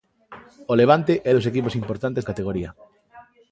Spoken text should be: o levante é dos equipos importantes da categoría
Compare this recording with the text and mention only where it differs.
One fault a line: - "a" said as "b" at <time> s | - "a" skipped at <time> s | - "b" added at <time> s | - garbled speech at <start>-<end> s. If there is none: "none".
- "da" skipped at 2.2 s